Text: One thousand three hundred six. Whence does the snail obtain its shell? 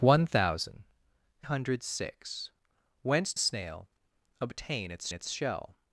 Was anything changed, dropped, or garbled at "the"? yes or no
yes